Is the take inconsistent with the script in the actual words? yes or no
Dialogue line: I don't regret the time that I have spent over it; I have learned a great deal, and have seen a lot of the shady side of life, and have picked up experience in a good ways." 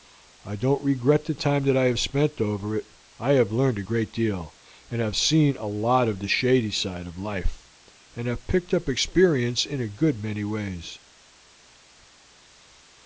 yes